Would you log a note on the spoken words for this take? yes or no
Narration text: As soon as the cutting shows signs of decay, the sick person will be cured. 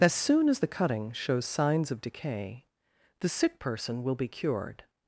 no